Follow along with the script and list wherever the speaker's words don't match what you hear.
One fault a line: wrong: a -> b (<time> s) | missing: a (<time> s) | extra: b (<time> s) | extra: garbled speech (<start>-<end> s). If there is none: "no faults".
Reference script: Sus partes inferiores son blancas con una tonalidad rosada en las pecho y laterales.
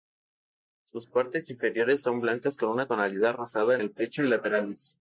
wrong: las -> el (3.8 s)